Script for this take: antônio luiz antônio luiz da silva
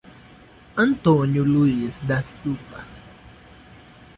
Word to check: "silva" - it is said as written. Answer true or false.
true